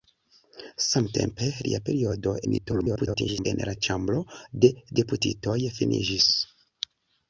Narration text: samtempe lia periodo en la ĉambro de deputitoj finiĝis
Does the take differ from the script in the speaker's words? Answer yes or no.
yes